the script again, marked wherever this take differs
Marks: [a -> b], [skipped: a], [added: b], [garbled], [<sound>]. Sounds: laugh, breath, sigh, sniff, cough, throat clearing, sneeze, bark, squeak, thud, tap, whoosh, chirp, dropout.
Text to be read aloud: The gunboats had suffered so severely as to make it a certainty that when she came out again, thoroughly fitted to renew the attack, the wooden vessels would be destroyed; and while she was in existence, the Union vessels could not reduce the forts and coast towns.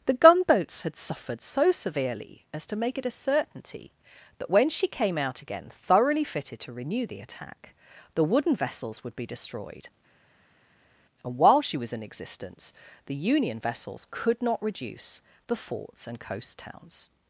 The gunboats had suffered so severely as to make it a certainty that when she came out again, thoroughly fitted to renew the attack, the wooden vessels would be destroyed; and while she was in existence, the Union vessels could not reduce the forts and coast towns.